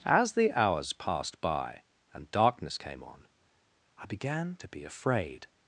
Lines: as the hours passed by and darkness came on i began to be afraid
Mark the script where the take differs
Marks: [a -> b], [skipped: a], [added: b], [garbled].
as the hours passed by and darkness came on i began to be afraid